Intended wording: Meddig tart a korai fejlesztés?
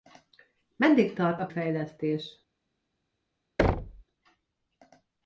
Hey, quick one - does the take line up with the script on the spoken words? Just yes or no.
no